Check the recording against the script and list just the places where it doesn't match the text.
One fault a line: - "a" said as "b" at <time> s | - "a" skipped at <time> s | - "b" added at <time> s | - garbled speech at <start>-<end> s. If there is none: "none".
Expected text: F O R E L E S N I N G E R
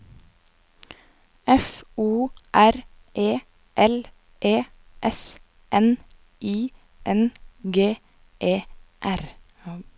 none